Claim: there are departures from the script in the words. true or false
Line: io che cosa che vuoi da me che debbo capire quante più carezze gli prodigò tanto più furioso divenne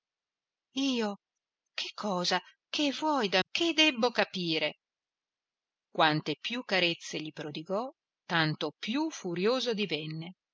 true